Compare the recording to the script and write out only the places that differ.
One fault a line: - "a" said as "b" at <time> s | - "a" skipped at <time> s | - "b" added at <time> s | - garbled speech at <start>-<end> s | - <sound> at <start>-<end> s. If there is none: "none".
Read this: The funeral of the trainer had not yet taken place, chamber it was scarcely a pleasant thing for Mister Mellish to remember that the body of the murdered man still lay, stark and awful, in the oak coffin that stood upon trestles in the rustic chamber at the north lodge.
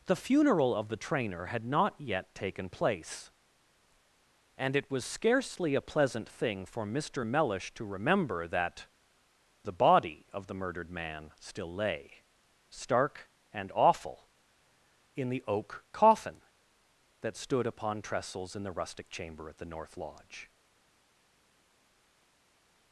- "chamber" said as "and" at 4.6 s